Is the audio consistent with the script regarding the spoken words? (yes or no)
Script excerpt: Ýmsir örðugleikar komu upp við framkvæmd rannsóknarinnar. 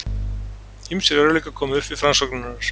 no